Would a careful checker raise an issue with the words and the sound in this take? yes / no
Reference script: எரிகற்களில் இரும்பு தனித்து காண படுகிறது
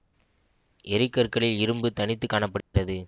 yes